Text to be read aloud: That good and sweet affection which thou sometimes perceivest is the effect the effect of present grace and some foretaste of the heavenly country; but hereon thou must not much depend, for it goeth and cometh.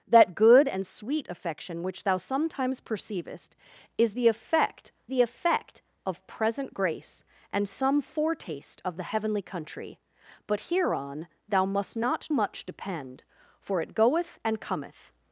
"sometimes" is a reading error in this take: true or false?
false